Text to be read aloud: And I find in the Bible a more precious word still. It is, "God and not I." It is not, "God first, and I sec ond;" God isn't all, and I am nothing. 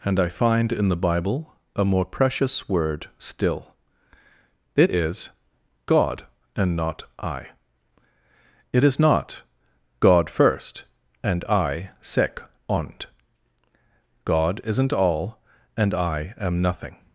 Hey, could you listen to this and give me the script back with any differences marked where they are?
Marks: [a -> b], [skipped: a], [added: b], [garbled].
And I find in the Bible a more precious word still. It is, "God and not I." It is not, "God first, and I sec ond;" God isn't all, and I am nothing.